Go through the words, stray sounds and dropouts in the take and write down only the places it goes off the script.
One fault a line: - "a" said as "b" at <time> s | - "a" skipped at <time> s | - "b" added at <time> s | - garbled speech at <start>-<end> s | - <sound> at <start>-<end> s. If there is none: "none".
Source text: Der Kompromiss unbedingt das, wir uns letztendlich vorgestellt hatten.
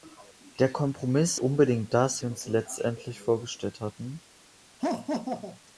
- laugh at 4.8-5.6 s